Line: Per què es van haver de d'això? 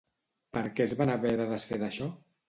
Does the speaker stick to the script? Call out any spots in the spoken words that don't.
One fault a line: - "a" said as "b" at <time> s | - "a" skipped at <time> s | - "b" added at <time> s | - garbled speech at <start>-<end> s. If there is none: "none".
- "desfer" added at 1.5 s